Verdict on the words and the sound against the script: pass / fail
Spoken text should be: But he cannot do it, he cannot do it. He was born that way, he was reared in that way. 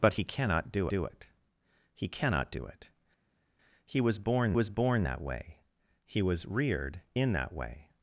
fail